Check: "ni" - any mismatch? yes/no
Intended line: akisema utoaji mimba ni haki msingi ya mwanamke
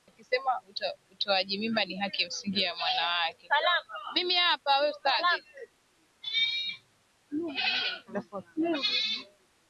no